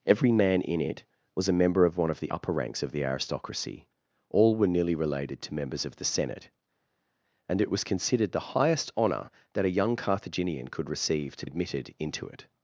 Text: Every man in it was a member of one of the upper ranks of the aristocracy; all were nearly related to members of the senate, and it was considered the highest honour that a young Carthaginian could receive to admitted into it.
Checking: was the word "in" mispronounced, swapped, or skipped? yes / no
no